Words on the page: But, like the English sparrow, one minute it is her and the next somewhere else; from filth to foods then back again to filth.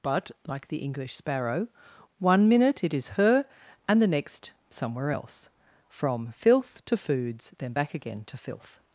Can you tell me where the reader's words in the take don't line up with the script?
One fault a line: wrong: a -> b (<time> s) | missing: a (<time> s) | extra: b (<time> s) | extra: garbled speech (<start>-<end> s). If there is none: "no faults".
no faults